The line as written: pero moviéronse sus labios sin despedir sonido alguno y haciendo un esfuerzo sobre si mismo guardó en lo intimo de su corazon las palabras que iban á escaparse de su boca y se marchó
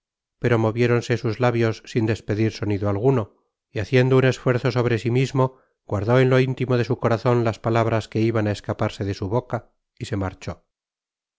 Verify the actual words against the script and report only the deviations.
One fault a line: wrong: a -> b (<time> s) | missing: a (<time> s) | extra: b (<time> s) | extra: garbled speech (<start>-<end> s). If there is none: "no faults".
no faults